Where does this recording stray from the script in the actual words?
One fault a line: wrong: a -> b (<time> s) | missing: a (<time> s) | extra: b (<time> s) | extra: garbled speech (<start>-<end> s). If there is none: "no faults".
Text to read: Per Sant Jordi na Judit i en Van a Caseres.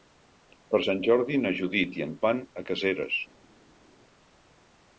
no faults